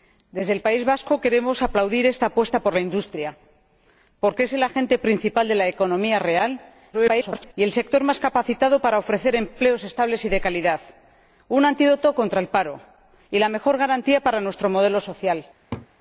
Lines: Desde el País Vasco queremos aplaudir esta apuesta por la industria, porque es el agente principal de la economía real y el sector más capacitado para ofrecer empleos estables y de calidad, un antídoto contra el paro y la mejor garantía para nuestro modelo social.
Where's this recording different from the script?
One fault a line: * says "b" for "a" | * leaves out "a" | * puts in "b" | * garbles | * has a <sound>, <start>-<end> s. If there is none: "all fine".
* garbles
* has a laugh, 15.7-15.9 s